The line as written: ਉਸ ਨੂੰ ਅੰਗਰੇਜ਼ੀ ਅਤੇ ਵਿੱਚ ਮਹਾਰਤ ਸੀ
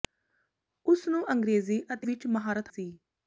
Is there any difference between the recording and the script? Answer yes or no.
no